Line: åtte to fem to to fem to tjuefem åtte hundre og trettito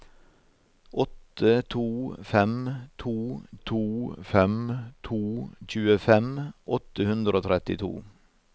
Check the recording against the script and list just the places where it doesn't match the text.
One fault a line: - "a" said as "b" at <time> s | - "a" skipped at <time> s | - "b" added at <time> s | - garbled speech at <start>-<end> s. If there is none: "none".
none